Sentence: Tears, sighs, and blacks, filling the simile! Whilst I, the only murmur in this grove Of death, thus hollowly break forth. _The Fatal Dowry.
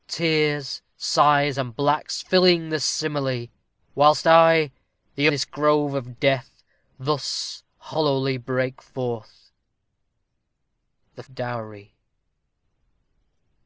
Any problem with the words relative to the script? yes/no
yes